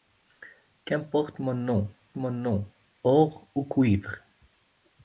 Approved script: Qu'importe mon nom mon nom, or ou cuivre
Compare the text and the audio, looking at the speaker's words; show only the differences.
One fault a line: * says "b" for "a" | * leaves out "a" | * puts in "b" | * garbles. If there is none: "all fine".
all fine